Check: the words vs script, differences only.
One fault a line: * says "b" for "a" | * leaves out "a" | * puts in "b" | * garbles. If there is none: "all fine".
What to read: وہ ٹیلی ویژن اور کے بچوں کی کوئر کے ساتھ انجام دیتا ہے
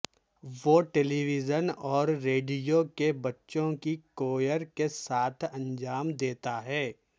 * puts in "ریڈیو"